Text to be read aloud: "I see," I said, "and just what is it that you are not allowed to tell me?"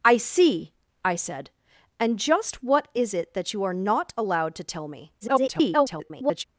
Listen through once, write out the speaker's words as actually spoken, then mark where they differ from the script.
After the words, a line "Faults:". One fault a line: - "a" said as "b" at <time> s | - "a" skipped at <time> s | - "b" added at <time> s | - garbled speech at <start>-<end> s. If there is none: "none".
"I see," I said, "and just what is it that you are not allowed to tell me?" [garbled]
Faults:
- garbled speech at 5.2-6.4 s